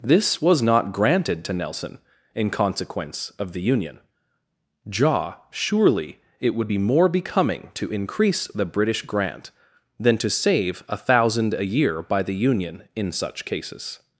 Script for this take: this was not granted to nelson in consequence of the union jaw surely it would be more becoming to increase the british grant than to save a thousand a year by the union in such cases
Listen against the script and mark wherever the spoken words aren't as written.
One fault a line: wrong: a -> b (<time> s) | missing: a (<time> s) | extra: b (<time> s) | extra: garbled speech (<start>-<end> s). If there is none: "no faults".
no faults